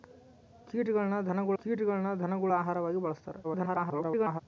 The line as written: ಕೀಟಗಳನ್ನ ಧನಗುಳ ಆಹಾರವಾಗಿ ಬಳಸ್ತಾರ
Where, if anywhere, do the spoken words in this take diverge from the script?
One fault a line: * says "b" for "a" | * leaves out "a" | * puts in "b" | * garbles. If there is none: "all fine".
* puts in "ಕೀಟಗಳನ್ನ ಧನಗುಳ"
* garbles